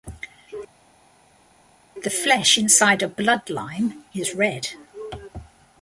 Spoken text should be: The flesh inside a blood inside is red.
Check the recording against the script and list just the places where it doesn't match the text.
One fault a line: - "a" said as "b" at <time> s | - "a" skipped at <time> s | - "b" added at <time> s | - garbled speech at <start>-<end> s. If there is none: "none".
- "inside" said as "lime" at 3.5 s